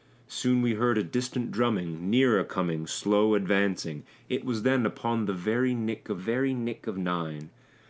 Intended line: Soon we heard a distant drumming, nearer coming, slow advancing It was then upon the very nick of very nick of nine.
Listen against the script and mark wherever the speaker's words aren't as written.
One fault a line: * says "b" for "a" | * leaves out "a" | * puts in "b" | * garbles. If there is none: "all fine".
all fine